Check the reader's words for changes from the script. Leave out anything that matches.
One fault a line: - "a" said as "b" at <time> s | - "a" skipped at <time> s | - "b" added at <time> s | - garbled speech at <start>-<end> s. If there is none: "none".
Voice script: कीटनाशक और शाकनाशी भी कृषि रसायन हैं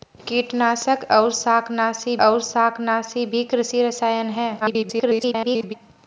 - "और शाकनाशी" added at 2.2 s
- garbled speech at 4.6-5.7 s